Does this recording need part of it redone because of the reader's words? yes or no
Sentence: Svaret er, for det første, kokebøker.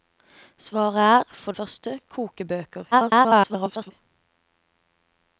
yes